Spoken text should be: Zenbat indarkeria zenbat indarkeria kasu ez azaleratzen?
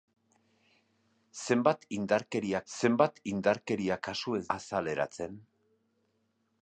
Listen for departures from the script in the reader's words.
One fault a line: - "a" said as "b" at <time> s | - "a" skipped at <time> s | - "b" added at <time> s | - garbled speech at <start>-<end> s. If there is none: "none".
none